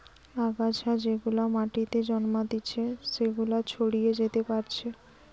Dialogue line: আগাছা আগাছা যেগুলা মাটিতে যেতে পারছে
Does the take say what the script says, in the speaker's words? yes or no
no